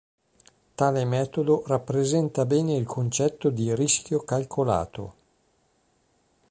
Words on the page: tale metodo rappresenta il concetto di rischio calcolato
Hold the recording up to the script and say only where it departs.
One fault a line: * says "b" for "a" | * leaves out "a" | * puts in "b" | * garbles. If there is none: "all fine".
* puts in "bene"